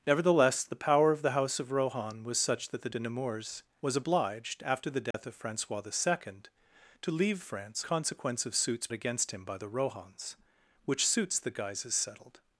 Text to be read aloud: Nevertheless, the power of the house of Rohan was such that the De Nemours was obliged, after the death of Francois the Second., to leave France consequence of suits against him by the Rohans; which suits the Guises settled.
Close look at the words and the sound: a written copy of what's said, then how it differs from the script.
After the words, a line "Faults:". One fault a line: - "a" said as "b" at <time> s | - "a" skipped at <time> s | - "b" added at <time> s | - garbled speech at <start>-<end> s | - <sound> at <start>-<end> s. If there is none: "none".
Nevertheless, the power of the house of Rohan was such that the De Nemours was obliged, after the death of Francois the Second., to leave France consequence of suits against him by the Rohans; which suits the Guises settled.
Faults:
- dropout at 5.1-5.1 s